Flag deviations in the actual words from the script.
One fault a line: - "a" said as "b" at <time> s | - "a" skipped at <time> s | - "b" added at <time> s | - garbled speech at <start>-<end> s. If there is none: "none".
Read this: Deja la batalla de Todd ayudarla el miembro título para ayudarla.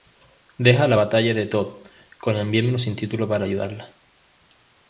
- "ayudarla" said as "con" at 2.2 s
- "sin" added at 2.8 s